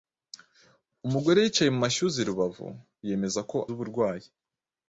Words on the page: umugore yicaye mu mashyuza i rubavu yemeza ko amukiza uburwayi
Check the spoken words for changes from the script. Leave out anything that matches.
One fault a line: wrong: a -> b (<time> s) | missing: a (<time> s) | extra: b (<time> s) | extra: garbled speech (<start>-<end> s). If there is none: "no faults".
missing: amukiza (3.6 s)